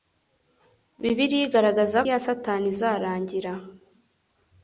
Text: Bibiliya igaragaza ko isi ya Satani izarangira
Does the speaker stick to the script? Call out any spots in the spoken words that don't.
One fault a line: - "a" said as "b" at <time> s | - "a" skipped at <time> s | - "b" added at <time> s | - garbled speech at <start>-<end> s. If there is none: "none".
- "ko isi" skipped at 2.0 s